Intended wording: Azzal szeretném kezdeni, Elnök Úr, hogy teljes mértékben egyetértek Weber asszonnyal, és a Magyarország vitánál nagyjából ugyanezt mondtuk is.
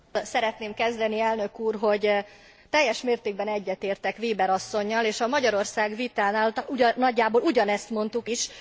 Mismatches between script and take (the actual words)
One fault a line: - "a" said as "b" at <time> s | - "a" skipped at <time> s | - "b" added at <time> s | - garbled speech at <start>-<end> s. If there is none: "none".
none